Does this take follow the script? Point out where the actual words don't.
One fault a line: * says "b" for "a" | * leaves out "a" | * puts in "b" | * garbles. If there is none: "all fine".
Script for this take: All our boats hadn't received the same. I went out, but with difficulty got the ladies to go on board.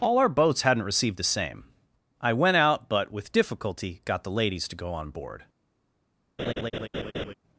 all fine